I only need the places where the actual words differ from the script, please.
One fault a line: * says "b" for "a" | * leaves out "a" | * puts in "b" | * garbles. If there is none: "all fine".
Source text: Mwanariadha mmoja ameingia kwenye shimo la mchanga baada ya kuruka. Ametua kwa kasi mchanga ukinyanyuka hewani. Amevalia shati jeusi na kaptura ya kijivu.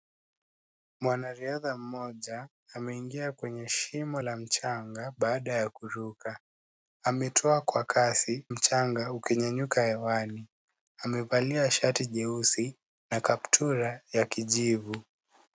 all fine